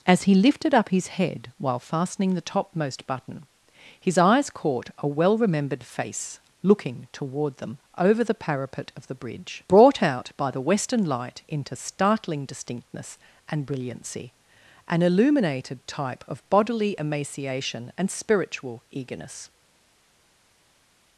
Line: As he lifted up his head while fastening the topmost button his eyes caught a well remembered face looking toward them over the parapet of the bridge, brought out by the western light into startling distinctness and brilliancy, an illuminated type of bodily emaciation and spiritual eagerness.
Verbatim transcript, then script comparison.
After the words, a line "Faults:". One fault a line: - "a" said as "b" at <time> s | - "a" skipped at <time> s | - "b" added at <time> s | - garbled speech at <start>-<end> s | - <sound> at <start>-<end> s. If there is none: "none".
As he lifted up his head while fastening the topmost button his eyes caught a well remembered face looking toward them over the parapet of the bridge, brought out by the western light into startling distinctness and brilliancy, an illuminated type of bodily emaciation and spiritual eagerness.
Faults:
none